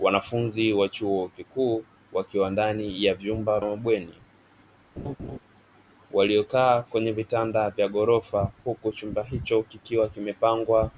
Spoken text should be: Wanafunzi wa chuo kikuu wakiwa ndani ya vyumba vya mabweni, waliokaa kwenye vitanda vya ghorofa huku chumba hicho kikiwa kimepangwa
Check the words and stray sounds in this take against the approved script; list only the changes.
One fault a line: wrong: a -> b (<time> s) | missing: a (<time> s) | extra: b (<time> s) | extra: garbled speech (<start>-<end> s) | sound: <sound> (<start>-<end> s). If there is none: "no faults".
missing: vya (3.6 s)
sound: laugh (5.0-5.4 s)